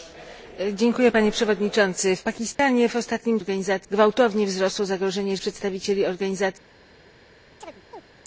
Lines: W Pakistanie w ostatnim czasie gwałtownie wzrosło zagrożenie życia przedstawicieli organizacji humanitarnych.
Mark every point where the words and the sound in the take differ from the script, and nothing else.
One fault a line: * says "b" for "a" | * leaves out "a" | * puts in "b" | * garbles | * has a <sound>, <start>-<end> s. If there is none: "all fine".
* has a dropout, 2.5-2.6 s
* says "humanitarnych" for "czasie"
* leaves out "życia"
* has a chirp, 7.6-8.0 s